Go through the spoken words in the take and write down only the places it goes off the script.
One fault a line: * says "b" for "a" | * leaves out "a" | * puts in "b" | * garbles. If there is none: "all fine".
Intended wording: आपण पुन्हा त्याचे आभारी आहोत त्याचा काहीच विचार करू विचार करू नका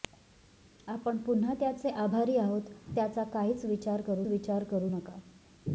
all fine